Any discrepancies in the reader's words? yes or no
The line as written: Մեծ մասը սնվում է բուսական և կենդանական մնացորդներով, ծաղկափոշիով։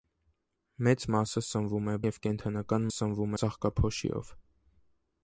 yes